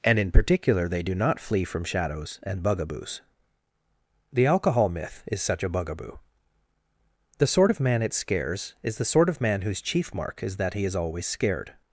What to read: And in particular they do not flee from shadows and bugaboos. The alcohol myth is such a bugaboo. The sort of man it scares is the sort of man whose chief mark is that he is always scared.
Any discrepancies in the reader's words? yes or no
no